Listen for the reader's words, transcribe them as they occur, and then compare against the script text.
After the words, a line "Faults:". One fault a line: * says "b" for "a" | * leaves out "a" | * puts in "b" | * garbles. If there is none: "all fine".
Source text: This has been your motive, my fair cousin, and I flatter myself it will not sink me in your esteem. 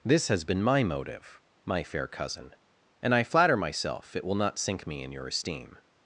This has been my motive, my fair cousin, and I flatter myself it will not sink me in your esteem.
Faults:
* says "my" for "your"